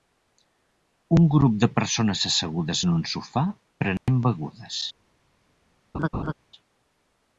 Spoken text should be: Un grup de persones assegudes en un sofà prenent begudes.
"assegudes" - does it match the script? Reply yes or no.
yes